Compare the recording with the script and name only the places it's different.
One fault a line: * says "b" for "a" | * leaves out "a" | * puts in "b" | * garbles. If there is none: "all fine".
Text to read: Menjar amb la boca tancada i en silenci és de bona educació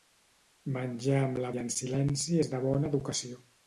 * leaves out "boca tancada"